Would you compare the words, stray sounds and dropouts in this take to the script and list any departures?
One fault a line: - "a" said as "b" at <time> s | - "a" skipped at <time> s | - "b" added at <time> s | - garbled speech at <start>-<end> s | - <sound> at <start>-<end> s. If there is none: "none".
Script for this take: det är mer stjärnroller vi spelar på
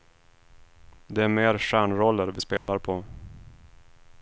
- dropout at 2.6-2.7 s